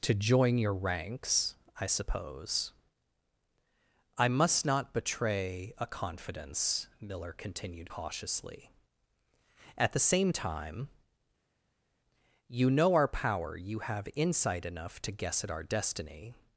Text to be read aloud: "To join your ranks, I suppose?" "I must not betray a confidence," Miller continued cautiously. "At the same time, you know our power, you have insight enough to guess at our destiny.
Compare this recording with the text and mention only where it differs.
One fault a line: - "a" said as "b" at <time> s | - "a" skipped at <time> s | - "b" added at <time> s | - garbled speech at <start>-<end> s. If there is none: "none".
none